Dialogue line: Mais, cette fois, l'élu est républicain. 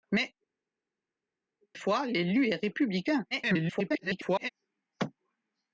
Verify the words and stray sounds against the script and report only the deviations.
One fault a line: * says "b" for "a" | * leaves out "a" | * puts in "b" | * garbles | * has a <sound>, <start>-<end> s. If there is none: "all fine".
* leaves out "cette"
* garbles